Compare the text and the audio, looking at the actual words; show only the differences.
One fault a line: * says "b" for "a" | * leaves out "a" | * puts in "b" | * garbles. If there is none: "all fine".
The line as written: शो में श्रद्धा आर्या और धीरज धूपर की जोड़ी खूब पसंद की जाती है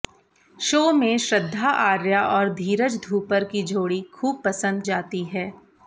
* leaves out "की"